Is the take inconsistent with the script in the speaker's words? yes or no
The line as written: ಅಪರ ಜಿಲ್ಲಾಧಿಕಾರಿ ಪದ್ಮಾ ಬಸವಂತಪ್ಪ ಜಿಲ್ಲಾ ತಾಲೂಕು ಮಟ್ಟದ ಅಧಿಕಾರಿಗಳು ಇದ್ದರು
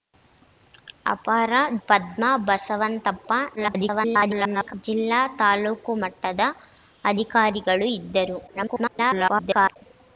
yes